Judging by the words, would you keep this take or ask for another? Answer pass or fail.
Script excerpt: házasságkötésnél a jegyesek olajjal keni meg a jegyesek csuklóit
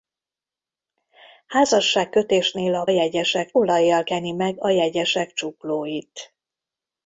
pass